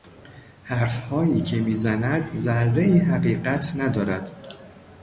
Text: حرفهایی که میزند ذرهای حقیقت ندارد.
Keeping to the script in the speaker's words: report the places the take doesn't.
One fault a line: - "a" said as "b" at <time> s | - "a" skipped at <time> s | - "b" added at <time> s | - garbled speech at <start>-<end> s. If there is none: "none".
none